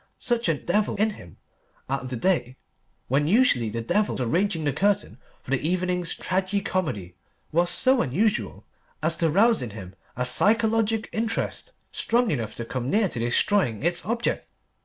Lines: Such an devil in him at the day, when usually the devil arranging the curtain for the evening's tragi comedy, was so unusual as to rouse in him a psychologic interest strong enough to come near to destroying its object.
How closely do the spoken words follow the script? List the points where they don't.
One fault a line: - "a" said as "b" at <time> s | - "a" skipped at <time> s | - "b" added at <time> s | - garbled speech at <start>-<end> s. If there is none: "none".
none